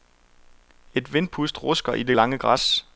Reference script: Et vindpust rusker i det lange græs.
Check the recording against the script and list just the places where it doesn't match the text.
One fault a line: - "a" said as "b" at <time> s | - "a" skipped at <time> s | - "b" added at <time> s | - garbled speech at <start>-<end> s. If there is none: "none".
none